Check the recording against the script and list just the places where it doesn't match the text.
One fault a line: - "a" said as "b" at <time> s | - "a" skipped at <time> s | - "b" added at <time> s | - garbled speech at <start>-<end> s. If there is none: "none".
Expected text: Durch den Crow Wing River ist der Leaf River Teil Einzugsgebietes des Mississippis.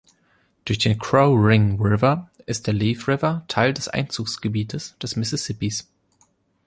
- "des" added at 3.7 s